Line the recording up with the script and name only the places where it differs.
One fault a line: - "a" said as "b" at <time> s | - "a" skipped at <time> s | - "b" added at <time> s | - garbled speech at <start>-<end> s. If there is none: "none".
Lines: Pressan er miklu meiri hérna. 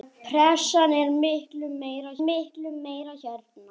- "miklu meiri" added at 2.3 s